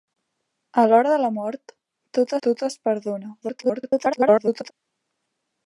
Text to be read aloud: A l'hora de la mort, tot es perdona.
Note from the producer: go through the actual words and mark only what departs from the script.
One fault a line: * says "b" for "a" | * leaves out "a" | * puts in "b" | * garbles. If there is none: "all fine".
* puts in "tot"
* garbles